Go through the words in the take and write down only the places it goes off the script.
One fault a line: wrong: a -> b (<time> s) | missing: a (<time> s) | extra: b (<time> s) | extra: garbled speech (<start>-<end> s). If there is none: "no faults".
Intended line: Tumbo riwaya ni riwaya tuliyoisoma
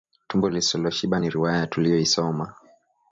wrong: riwaya -> lisiloshiba (0.5 s)